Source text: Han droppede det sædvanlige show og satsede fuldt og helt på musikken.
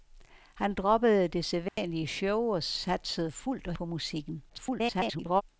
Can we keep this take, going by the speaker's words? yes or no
no